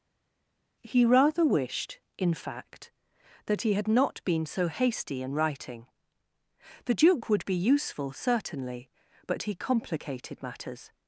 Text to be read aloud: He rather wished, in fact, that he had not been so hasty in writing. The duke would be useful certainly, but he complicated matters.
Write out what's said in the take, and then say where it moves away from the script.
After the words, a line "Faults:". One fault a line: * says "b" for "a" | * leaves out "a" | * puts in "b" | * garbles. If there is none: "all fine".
He rather wished, in fact, that he had not been so hasty in writing. The duke would be useful certainly, but he complicated matters.
Faults:
all fine